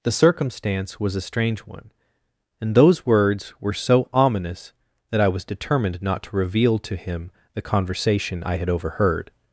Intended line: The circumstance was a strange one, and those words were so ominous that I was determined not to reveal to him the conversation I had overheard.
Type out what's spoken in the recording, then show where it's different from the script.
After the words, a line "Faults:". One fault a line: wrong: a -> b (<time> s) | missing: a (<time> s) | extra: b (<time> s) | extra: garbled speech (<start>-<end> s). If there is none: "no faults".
The circumstance was a strange one, and those words were so ominous that I was determined not to reveal to him the conversation I had overheard.
Faults:
no faults